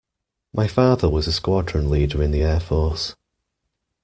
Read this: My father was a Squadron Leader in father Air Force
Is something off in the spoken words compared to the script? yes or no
yes